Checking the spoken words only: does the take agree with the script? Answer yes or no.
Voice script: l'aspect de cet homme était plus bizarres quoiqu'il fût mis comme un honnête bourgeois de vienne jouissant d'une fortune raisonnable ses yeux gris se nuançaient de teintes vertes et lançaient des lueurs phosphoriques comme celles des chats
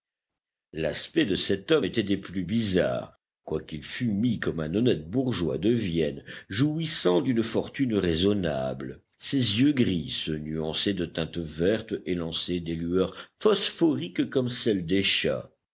no